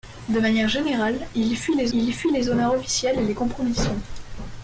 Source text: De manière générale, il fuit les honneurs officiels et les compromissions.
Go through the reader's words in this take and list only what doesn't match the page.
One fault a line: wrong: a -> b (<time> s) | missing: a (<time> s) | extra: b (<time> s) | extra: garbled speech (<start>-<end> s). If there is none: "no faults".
extra: il fuit les (1.9 s)